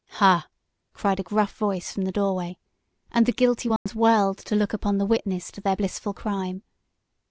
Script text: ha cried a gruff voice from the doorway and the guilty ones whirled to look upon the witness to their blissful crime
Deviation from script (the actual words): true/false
false